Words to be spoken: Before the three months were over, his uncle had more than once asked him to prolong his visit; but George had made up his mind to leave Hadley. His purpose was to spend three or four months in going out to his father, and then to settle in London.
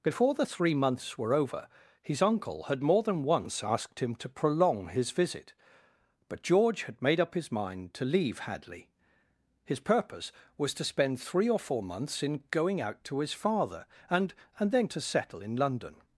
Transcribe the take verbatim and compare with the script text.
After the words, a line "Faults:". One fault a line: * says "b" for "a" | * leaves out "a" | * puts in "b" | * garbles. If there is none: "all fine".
Before the three months were over, his uncle had more than once asked him to prolong his visit; but George had made up his mind to leave Hadley. His purpose was to spend three or four months in going out to his father, and and then to settle in London.
Faults:
* puts in "and"